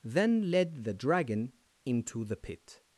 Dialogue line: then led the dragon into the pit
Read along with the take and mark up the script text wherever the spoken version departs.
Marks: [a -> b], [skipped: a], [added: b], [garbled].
then led the dragon into the pit